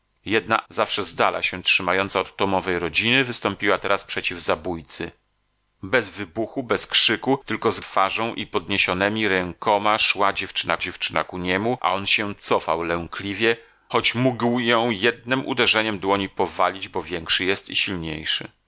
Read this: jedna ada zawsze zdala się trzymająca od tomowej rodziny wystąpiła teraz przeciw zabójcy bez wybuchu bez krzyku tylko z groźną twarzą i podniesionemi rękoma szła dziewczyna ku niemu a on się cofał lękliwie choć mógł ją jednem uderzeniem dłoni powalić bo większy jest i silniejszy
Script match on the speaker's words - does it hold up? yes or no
no